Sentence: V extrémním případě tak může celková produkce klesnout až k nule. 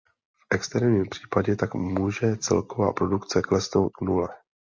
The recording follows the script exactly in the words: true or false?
false